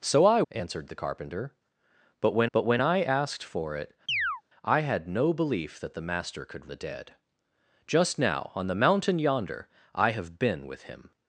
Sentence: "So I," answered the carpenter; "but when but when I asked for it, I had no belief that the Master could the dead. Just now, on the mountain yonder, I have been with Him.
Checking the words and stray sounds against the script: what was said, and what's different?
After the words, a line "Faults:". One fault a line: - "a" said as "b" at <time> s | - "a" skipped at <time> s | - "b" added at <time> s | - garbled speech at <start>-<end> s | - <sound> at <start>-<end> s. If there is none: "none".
"So I," answered the carpenter; "but when but when I asked for it, I had no belief that the Master could the dead. Just now, on the mountain yonder, I have been with Him.
Faults:
- chirp at 4.1-4.4 s